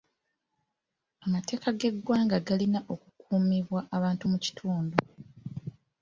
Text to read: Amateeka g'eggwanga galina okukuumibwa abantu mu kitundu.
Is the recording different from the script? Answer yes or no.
no